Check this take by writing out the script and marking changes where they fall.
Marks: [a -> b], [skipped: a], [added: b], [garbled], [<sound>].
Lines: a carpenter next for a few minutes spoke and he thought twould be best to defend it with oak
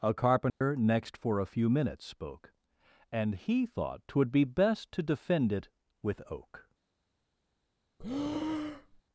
a carpenter [dropout] next for a few minutes spoke and he thought twould be best to defend it with oak [breath]